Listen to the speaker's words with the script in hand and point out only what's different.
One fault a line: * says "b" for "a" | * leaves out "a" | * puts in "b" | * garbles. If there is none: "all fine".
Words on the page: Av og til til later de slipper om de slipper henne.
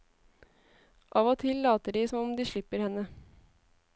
* leaves out "til"
* says "som" for "slipper"